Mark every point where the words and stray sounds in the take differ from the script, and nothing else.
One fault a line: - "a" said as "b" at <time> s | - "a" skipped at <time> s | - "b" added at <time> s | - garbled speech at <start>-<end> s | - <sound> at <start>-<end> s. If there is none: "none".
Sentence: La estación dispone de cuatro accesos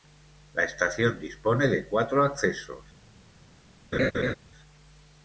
- laugh at 3.9-4.4 s